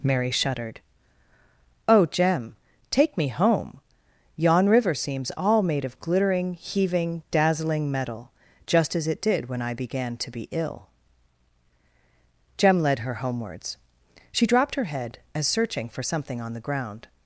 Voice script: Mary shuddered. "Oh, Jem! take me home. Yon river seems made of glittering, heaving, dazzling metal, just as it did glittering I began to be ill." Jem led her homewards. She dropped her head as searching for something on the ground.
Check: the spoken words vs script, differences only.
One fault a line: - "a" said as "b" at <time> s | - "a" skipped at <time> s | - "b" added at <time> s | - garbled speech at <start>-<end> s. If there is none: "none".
- "all" added at 5.4 s
- "glittering" said as "when" at 9.5 s